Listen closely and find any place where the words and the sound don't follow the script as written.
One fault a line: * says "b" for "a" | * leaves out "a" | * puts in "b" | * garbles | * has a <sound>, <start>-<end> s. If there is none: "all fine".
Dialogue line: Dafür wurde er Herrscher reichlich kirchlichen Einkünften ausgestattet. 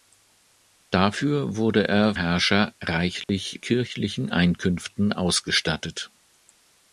* has a dropout, 3.2-3.3 s